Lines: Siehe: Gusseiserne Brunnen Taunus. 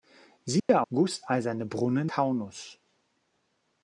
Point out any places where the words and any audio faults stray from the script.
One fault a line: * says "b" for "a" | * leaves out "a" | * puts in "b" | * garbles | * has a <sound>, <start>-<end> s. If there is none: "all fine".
* has a dropout, 0.6-0.7 s